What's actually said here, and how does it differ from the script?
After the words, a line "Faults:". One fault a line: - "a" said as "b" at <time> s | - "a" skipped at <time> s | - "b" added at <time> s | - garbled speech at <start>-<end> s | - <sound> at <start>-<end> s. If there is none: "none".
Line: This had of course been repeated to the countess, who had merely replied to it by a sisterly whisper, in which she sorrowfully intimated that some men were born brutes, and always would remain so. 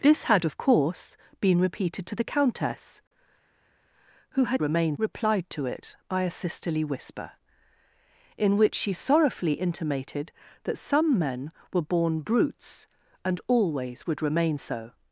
This had of course been repeated to the countess, who had remain replied to it by a sisterly whisper, in which she sorrowfully intimated that some men were born brutes, and always would remain so.
Faults:
- "merely" said as "remain" at 4.6 s